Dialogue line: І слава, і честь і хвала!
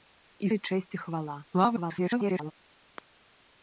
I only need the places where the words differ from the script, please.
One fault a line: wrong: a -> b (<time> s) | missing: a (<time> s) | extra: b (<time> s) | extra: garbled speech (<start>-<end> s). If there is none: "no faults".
missing: слава (0.5 s)
extra: garbled speech (1.5-2.5 s)